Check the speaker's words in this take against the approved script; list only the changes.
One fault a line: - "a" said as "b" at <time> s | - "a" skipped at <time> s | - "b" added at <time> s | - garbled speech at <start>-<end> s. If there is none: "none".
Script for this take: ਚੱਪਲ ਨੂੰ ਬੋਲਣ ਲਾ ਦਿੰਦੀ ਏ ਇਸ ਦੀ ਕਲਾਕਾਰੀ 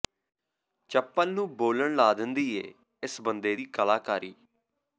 - "ਬੰਦੇ" added at 3.2 s